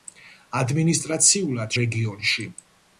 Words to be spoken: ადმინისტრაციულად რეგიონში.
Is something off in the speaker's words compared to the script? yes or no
no